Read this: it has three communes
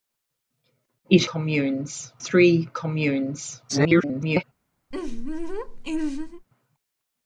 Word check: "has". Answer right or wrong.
wrong